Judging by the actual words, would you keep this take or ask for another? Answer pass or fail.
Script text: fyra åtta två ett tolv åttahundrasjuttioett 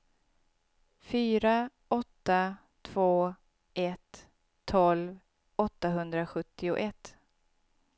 pass